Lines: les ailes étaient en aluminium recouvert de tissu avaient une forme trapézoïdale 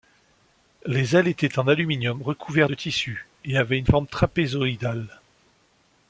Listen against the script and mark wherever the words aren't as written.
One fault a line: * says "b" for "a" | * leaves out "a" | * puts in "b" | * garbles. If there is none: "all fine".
* puts in "et"